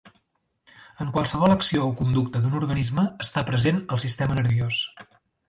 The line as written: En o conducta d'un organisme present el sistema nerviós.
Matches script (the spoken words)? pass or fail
fail